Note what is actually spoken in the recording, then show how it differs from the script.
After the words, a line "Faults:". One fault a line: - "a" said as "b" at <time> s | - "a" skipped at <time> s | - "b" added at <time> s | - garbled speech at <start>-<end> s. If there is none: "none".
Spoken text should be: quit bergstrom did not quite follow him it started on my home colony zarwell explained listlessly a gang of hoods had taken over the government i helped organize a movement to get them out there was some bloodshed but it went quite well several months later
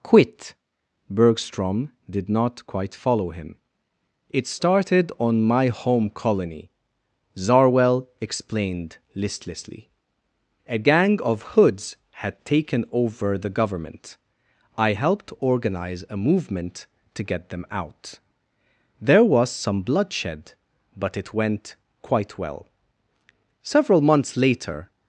quit bergstrom did not quite follow him it started on my home colony zarwell explained listlessly a gang of hoods had taken over the government i helped organize a movement to get them out there was some bloodshed but it went quite well several months later
Faults:
none